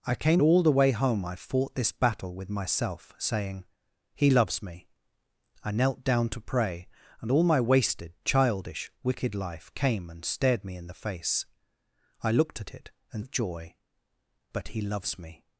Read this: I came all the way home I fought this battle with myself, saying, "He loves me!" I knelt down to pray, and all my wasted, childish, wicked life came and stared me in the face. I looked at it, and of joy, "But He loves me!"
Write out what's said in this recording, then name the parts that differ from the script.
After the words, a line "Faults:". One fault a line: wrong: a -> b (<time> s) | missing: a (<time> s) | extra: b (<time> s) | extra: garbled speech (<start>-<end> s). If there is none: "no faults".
I came all the way home I fought this battle with myself, saying, "He loves me!" I knelt down to pray, and all my wasted, childish, wicked life came and stared me in the face. I looked at it, and of joy, "But He loves me!"
Faults:
no faults